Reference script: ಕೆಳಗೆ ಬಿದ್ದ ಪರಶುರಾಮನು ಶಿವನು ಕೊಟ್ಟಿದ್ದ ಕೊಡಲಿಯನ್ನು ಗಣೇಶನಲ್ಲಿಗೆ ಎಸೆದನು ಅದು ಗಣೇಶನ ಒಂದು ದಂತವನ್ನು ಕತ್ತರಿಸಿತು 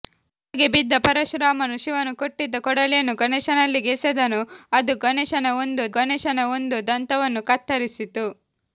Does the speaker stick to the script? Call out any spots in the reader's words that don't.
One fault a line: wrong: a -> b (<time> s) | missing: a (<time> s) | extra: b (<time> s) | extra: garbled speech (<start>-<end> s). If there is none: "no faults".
extra: ಗಣೇಶನ ಒಂದು (6.0 s)